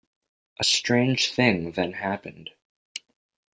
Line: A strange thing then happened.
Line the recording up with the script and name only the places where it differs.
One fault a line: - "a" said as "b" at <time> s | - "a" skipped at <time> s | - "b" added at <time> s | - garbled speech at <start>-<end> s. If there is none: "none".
none